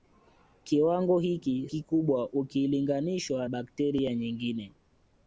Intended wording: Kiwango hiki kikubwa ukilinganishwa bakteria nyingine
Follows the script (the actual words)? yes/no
yes